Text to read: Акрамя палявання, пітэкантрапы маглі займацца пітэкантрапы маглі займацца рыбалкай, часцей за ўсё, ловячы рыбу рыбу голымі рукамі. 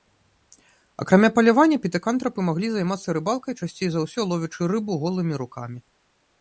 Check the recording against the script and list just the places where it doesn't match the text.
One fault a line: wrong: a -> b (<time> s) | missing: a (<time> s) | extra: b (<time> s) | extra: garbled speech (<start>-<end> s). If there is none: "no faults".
missing: пітэкантрапы маглі займацца (3.2 s)
missing: рыбу (5.0 s)